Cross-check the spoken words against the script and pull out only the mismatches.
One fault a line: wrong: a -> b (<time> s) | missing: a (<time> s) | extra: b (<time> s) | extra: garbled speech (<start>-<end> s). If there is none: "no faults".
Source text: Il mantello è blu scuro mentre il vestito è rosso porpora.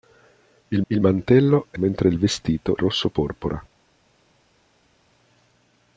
extra: il (0.9 s)
missing: blu scuro (1.8 s)
missing: è (2.8 s)